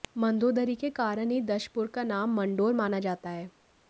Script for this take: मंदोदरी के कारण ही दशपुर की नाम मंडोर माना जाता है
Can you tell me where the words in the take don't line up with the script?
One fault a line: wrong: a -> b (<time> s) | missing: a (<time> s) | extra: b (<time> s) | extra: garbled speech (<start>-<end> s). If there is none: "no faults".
wrong: की -> का (1.9 s)